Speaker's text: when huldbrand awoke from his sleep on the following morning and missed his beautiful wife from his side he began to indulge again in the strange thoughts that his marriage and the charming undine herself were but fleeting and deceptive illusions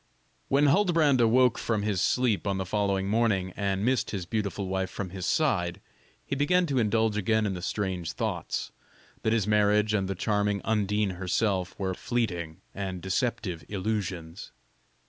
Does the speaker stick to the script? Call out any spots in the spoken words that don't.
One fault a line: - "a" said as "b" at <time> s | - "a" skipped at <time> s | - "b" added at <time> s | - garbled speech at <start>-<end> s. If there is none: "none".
- "but" skipped at 11.9 s